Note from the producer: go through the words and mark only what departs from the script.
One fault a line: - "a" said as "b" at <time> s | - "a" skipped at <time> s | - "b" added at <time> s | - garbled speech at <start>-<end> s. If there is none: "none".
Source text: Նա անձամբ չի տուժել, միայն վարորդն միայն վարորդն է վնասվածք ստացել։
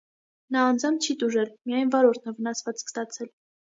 - "միայն վարորդն" skipped at 2.3 s